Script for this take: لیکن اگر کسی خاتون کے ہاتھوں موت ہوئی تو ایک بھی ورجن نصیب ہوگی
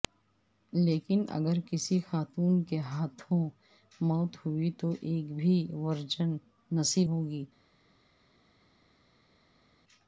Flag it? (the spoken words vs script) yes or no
no